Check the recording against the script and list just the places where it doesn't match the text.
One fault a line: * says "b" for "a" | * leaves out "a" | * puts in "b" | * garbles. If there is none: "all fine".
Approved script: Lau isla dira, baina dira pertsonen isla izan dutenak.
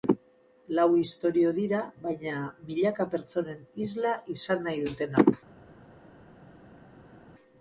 * says "istorio" for "isla"
* says "milaka" for "dira"
* puts in "nahi"